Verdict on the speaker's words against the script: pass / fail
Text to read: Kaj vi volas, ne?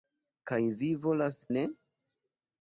pass